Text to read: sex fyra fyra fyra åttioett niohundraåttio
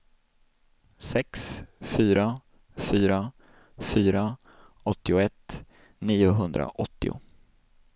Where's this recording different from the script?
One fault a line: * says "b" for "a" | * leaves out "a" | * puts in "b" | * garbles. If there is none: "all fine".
all fine